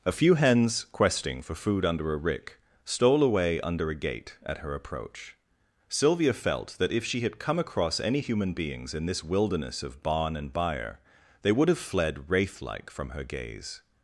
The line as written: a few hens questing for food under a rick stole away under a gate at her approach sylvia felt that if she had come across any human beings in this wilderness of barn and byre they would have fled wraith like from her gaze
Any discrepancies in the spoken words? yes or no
no